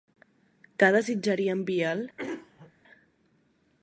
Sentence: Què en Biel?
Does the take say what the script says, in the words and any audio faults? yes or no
no